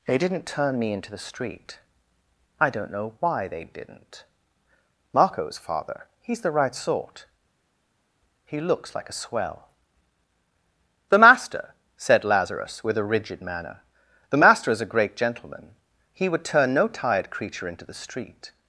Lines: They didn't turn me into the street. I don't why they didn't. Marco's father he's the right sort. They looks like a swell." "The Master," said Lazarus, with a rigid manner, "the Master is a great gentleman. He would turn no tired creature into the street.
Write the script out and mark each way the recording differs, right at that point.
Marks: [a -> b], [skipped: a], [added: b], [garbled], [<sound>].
They didn't turn me into the street. I don't [added: know] why they didn't. Marco's father he's the right sort. [They -> He] looks like a swell." "The Master," said Lazarus, with a rigid manner, "the Master is a great gentleman. He would turn no tired creature into the street.